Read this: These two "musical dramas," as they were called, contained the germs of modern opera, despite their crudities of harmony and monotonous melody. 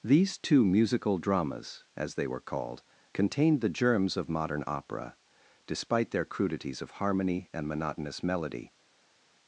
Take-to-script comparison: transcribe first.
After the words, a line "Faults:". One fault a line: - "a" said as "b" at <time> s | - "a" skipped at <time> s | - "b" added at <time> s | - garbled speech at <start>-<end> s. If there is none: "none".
These two "musical dramas," as they were called, contained the germs of modern opera, despite their crudities of harmony and monotonous melody.
Faults:
none